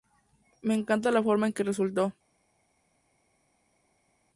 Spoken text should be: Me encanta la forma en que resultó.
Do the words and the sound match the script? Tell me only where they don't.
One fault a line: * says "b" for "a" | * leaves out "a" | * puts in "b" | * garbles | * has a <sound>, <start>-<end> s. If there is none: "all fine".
all fine